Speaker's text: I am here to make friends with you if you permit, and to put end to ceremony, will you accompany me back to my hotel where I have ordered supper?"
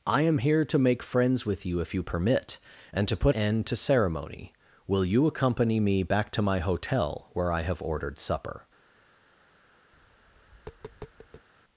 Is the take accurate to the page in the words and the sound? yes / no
no